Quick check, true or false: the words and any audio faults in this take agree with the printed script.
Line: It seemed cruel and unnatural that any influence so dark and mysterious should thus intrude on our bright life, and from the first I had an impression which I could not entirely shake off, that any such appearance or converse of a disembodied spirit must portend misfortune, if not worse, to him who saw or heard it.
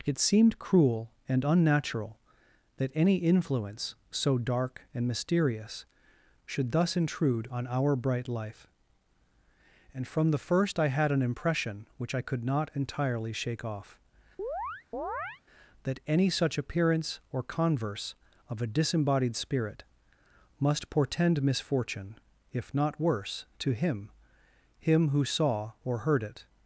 false